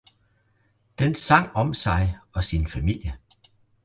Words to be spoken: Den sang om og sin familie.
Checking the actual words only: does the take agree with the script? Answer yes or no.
no